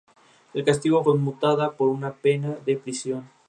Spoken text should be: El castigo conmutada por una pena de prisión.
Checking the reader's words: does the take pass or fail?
pass